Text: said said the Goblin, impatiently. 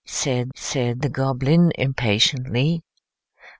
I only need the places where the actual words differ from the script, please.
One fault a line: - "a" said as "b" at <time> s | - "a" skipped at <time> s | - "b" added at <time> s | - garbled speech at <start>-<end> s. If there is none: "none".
none